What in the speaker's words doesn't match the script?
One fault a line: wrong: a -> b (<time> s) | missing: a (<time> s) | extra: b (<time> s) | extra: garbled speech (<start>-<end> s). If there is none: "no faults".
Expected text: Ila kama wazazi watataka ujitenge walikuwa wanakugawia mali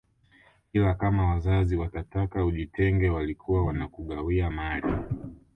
no faults